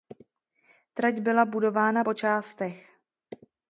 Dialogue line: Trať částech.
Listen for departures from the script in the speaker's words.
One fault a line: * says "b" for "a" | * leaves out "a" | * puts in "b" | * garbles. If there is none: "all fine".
* puts in "byla budována po"